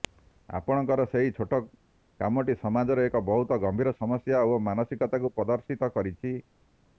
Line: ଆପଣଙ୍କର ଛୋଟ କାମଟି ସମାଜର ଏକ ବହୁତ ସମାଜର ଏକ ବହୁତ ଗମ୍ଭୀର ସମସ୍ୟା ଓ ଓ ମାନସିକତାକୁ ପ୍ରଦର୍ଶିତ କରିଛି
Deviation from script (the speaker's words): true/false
true